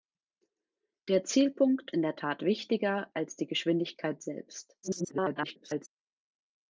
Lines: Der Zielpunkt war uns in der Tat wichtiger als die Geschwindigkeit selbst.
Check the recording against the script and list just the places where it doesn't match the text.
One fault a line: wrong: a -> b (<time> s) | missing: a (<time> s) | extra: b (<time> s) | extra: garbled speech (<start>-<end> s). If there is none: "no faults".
missing: war uns (1.9 s)
extra: garbled speech (4.8-5.9 s)